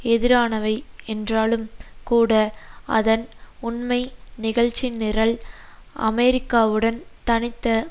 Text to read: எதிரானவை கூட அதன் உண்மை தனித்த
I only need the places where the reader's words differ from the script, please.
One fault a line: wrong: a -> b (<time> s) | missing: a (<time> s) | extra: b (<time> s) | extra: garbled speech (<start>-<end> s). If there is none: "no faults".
extra: என்றாலும் (1.1 s)
extra: நிகழ்ச்சிநிரல் அமெரிக்காவுடன் (4.4 s)